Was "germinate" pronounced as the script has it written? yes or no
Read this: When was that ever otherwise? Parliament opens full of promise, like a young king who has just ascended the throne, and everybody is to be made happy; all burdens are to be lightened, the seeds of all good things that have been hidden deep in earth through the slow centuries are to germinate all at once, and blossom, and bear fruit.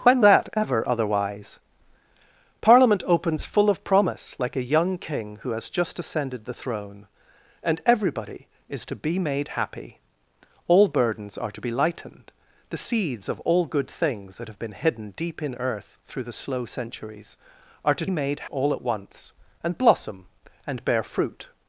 no